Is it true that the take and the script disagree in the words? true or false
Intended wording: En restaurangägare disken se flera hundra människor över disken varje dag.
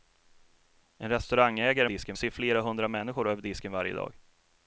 false